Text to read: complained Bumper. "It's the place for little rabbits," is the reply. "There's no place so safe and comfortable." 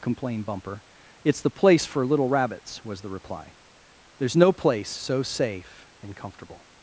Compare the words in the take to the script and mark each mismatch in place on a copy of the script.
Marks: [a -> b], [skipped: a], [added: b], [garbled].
complained Bumper. "It's the place for little rabbits," [is -> was] the reply. "There's no place so safe and comfortable."